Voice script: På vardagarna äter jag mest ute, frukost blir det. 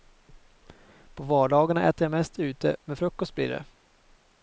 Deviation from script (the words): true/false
true